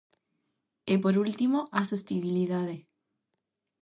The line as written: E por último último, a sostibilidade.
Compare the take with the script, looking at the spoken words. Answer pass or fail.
fail